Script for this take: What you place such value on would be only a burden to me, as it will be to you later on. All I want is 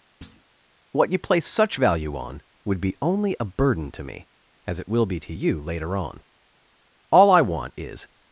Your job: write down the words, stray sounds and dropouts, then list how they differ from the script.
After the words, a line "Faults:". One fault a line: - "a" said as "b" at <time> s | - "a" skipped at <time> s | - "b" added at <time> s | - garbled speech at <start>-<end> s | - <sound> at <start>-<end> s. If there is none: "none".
What you place such value on would be only a burden to me, as it will be to you later on. All I want is
Faults:
- thud at 0.2-0.4 s